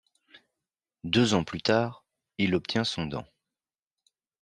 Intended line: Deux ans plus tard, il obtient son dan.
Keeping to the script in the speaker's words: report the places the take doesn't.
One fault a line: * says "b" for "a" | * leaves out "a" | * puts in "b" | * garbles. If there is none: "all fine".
all fine